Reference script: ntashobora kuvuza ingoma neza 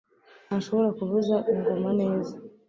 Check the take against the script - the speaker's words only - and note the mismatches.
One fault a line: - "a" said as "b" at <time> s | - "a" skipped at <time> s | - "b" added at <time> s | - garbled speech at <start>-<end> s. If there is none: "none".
none